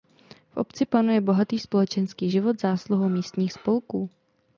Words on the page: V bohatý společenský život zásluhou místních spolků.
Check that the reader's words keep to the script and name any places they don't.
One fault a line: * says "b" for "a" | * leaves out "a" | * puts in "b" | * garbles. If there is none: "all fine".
* puts in "obci panuje"